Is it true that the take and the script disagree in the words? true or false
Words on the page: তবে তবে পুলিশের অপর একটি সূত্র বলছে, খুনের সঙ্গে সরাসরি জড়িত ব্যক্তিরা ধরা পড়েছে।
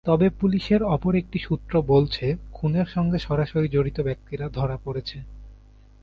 true